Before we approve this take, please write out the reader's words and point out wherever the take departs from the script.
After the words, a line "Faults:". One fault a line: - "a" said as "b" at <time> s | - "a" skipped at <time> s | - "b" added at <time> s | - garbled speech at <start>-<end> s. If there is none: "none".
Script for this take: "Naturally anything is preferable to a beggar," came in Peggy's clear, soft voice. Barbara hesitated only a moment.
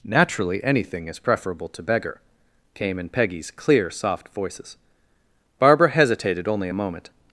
"Naturally anything is preferable to beggar," came in Peggy's clear, soft voices. Barbara hesitated only a moment.
Faults:
- "a" skipped at 1.8 s
- "voice" said as "voices" at 4.3 s